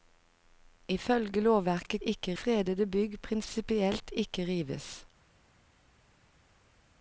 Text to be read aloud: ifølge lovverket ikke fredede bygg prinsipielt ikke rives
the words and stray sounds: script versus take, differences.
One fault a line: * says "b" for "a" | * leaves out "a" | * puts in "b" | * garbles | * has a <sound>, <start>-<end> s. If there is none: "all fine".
all fine